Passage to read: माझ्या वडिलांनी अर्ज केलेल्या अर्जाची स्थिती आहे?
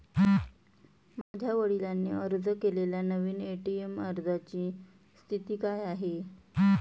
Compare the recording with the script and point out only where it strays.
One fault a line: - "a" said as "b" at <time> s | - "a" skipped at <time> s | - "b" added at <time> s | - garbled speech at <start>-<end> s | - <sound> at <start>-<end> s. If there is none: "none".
- dropout at 1.2-1.3 s
- "नवीन ए.टी.एम" added at 3.0 s
- "काय" added at 5.5 s